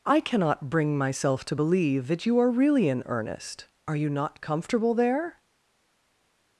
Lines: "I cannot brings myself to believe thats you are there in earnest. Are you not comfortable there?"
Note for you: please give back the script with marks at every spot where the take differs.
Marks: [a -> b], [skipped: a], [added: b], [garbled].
"I cannot [brings -> bring] myself to believe [thats -> that] you are [there -> really] in earnest. Are you not comfortable there?"